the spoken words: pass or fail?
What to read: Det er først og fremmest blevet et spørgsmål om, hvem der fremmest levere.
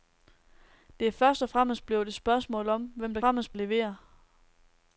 pass